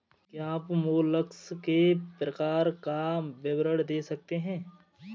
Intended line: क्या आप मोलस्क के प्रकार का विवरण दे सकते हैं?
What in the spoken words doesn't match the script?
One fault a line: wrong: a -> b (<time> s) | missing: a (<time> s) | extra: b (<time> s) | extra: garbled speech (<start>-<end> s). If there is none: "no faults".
no faults